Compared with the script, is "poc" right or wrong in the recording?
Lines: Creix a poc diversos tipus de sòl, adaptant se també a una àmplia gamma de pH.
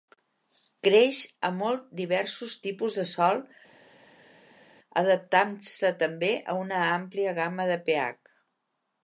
wrong